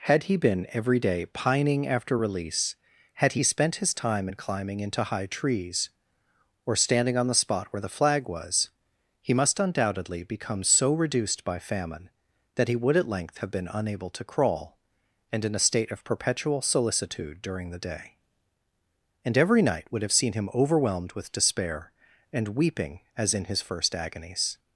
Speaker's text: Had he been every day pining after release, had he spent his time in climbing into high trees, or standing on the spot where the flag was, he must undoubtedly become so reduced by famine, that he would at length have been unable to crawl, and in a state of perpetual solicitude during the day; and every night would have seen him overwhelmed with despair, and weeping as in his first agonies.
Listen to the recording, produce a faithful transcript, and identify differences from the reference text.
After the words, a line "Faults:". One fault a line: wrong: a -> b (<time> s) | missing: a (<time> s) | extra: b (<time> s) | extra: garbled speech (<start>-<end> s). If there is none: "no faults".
Had he been every day pining after release, had he spent his time in climbing into high trees, or standing on the spot where the flag was, he must undoubtedly become so reduced by famine, that he would at length have been unable to crawl, and in a state of perpetual solicitude during the day; and every night would have seen him overwhelmed with despair, and weeping as in his first agonies.
Faults:
no faults